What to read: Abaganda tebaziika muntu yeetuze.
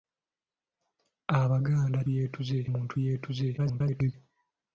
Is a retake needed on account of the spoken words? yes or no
yes